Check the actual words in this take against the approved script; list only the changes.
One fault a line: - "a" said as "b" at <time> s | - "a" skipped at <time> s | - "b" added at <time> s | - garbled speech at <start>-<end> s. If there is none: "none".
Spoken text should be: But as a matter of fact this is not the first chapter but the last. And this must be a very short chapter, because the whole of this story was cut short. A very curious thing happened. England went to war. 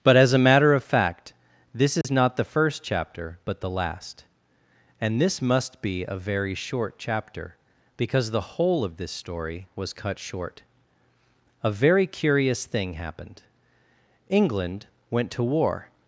none